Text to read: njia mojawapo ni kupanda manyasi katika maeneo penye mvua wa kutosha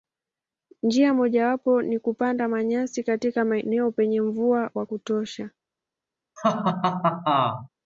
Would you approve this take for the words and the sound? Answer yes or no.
no